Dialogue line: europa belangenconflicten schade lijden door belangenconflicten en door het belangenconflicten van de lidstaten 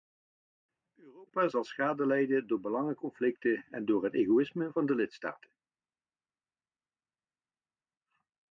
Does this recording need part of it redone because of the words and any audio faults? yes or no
yes